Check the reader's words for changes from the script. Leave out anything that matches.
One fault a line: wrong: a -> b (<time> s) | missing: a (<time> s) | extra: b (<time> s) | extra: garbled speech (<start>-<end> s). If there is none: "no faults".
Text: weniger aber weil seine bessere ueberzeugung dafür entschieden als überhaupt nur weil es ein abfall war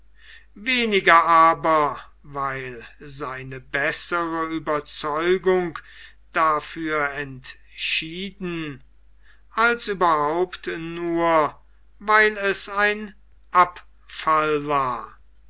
no faults